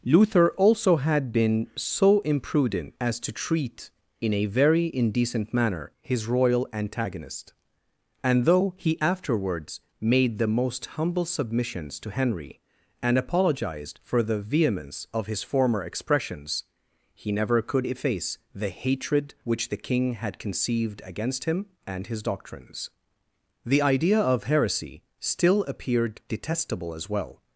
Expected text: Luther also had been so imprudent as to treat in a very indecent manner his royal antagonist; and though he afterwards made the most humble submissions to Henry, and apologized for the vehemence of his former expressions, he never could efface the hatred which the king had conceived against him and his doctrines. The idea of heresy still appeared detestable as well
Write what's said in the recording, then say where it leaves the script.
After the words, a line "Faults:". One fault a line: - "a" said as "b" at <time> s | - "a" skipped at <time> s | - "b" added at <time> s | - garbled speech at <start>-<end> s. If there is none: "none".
Luther also had been so imprudent as to treat in a very indecent manner his royal antagonist; and though he afterwards made the most humble submissions to Henry, and apologized for the vehemence of his former expressions, he never could efface the hatred which the king had conceived against him and his doctrines. The idea of heresy still appeared detestable as well
Faults:
none